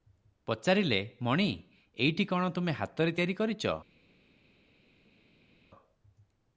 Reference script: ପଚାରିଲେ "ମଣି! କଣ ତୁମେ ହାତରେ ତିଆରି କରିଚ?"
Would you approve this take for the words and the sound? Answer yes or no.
no